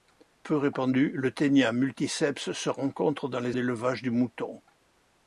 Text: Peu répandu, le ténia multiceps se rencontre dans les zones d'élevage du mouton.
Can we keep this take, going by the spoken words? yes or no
no